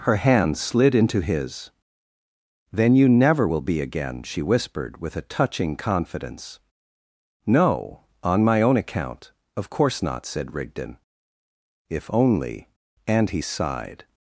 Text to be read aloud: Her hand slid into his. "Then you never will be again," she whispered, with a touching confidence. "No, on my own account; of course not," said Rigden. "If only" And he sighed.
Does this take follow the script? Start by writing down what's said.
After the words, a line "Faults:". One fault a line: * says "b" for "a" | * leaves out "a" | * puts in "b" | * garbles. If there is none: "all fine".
Her hand slid into his. "Then you never will be again," she whispered, with a touching confidence. "No, on my own account; of course not," said Rigden. "If only" And he sighed.
Faults:
all fine